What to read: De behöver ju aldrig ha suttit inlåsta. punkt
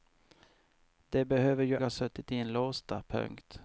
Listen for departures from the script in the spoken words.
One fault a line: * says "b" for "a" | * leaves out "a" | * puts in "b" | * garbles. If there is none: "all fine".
* leaves out "aldrig"